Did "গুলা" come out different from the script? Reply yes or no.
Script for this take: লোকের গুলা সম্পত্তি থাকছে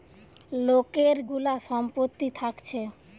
no